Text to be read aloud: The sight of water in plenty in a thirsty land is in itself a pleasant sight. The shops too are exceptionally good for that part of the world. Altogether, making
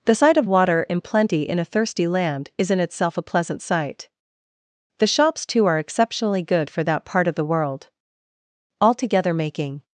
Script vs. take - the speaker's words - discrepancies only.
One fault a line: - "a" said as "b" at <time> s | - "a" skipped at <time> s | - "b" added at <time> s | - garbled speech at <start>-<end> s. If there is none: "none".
none